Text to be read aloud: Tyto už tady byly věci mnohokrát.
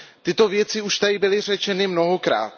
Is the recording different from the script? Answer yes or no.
yes